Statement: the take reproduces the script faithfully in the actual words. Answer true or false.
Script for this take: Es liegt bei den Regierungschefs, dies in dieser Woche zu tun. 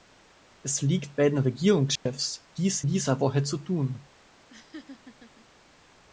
false